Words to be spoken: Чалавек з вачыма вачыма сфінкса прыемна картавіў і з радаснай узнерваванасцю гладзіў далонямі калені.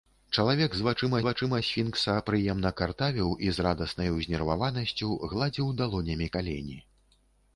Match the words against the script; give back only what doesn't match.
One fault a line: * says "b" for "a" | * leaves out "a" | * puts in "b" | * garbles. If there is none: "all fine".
all fine